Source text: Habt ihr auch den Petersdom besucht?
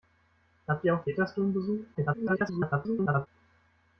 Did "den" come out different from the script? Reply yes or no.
yes